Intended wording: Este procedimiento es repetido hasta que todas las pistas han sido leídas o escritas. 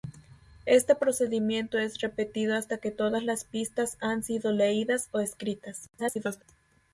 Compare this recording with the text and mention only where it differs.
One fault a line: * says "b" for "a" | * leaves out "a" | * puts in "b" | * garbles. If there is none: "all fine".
* garbles